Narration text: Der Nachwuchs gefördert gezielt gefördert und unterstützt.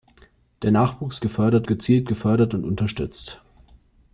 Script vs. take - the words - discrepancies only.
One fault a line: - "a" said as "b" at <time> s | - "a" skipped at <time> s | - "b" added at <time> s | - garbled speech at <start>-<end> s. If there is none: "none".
none